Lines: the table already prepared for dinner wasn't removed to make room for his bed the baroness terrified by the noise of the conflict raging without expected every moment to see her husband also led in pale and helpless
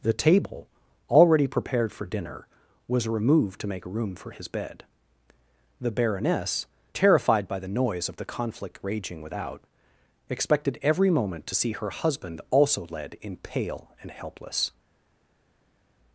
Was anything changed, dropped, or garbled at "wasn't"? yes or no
yes